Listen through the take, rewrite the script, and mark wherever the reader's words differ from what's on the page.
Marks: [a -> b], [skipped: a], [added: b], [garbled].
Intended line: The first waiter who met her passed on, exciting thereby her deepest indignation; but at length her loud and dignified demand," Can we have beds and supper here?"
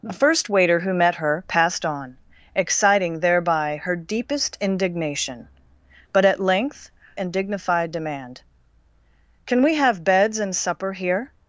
The first waiter who met her passed on, exciting thereby her deepest indignation; but at length [skipped: her loud] and dignified demand," Can we have beds and supper here?"